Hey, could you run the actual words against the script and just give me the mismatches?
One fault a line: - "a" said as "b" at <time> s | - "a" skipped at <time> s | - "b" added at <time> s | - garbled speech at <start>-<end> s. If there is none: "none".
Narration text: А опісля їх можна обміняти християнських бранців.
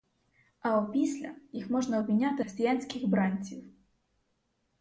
none